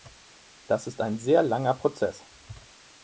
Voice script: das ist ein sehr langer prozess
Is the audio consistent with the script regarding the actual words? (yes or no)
yes